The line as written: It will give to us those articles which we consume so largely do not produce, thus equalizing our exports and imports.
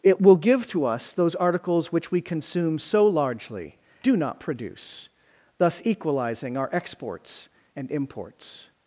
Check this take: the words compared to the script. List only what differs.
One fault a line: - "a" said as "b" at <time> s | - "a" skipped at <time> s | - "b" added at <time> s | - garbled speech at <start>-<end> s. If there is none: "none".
none